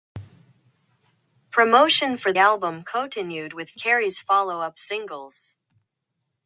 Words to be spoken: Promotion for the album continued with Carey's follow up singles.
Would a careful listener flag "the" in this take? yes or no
yes